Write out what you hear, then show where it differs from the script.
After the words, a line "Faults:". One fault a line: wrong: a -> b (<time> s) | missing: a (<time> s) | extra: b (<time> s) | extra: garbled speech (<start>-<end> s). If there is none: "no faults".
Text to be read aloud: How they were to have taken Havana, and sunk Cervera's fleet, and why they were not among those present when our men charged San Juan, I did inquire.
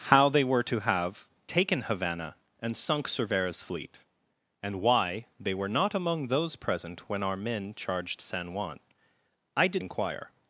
How they were to have taken Havana, and sunk Cervera's fleet, and why they were not among those present when our men charged San Juan, I did inquire.
Faults:
no faults